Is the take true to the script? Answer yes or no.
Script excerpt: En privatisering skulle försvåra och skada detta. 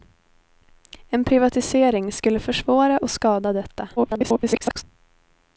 no